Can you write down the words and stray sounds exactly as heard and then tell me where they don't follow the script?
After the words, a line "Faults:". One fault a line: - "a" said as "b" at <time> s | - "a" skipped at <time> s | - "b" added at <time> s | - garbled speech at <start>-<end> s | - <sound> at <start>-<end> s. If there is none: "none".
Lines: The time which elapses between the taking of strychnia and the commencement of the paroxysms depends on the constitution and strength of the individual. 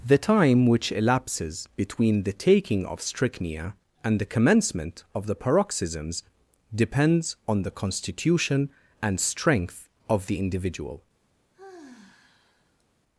The time which elapses between the taking of strychnia and the commencement of the paroxysms depends on the constitution and strength of the individual.
Faults:
- sigh at 11.5-12.8 s